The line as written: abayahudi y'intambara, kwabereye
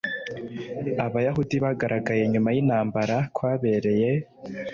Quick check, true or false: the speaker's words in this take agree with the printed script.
false